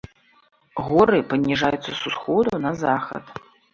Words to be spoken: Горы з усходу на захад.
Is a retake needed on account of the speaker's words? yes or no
yes